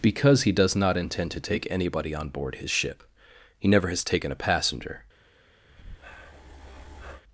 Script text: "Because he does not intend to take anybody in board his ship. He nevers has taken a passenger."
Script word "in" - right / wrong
wrong